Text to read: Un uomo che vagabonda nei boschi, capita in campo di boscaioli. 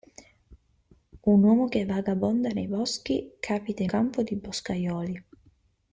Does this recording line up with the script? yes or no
yes